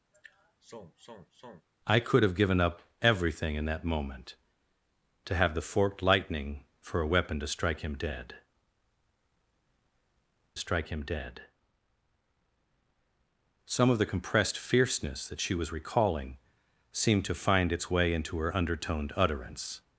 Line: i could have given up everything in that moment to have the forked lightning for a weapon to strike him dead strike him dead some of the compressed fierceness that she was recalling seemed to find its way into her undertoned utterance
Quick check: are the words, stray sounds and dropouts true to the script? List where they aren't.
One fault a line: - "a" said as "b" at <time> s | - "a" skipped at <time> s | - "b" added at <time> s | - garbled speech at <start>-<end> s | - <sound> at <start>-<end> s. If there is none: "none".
- sigh at 0.1-1.7 s